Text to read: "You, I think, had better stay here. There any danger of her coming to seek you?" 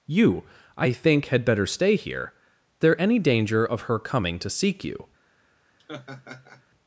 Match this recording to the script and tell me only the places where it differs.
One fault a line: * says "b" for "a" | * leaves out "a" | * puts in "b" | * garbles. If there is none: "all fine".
all fine